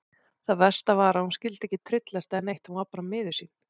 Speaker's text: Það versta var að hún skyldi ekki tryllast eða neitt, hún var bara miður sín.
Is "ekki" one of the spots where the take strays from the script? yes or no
no